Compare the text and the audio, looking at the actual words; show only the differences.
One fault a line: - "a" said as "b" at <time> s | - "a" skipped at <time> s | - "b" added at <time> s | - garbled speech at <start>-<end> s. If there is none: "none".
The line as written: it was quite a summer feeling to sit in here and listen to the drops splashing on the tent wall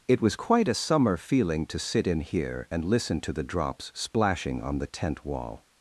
none